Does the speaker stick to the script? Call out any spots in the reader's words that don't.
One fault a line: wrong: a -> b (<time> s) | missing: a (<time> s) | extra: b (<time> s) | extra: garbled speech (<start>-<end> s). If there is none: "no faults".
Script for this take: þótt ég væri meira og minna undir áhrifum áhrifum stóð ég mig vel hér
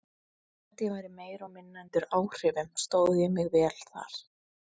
missing: áhrifum (2.7 s)
wrong: hér -> þar (3.9 s)